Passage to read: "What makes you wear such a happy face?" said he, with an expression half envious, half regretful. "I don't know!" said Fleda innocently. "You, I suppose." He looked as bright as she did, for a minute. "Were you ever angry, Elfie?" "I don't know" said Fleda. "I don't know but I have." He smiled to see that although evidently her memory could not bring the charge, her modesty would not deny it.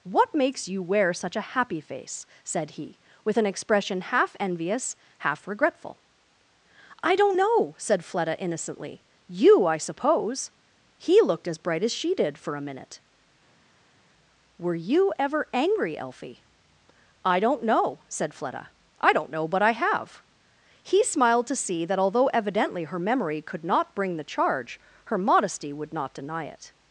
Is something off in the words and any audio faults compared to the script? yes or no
no